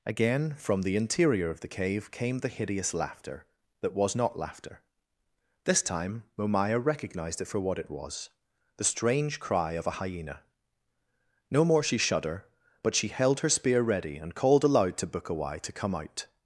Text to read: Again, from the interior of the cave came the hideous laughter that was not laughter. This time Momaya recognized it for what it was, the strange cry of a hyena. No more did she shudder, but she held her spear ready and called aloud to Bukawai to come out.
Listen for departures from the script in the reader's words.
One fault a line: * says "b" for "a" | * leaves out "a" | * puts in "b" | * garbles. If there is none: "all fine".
* leaves out "did"